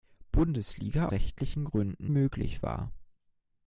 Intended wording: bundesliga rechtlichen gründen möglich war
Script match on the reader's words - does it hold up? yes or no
yes